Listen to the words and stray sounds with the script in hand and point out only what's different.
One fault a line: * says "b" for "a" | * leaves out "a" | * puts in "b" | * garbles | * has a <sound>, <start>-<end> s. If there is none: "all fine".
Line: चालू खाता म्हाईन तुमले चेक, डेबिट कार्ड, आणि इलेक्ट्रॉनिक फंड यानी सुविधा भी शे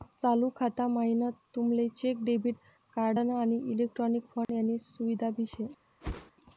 * has a dropout, 4.4-4.5 s
* has a whoosh, 6.0-6.3 s